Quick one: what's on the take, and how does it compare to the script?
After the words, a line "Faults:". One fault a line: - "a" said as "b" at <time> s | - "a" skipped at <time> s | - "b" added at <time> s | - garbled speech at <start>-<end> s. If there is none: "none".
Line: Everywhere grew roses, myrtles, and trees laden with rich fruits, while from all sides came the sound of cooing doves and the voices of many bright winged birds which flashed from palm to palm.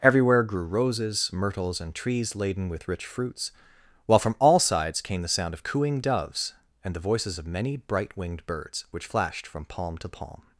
Everywhere grew roses, myrtles, and trees laden with rich fruits, while from all sides came the sound of cooing doves and the voices of many bright winged birds which flashed from palm to palm.
Faults:
none